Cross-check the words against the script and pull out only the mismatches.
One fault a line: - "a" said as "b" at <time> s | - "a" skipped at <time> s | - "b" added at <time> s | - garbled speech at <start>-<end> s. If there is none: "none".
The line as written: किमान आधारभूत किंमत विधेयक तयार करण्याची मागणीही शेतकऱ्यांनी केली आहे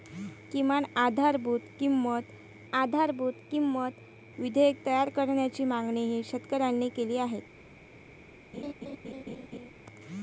- "आधारभूत किंमत" added at 2.7 s